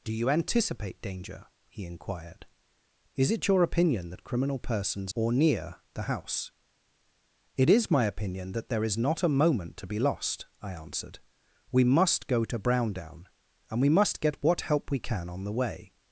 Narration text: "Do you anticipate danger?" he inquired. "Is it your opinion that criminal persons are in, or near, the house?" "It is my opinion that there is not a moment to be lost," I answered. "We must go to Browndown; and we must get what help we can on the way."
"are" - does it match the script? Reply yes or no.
no